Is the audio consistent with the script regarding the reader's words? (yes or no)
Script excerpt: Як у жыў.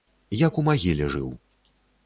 no